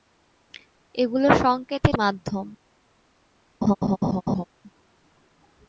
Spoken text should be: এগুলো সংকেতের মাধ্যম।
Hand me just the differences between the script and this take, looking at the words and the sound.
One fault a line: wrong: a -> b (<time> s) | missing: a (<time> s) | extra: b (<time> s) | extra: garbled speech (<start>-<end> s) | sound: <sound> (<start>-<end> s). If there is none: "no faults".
sound: laugh (3.6-4.4 s)